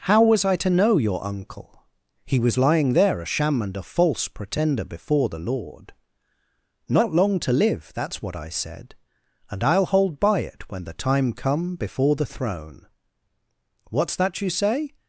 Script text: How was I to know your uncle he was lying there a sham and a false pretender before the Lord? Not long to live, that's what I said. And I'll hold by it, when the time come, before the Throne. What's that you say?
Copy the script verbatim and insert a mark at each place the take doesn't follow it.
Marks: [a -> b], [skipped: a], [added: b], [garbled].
How was I to know your uncle he was lying there a sham and a false pretender before the Lord? Not long to live, that's what I said. And I'll hold by it, when the time come, before the Throne. What's that you say?